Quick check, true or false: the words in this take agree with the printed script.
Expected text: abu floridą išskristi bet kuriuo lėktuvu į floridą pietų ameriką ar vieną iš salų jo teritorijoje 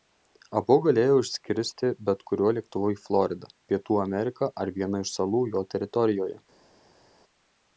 false